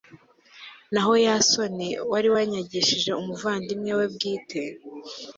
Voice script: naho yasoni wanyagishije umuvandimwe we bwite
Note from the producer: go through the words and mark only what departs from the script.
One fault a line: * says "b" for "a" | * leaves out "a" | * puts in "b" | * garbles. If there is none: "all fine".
* puts in "wari"